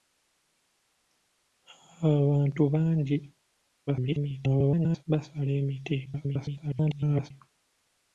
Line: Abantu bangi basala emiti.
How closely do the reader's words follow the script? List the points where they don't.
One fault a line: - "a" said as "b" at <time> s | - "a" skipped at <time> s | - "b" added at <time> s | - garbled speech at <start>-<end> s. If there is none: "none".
- garbled speech at 3.9-5.0 s
- garbled speech at 6.1-7.3 s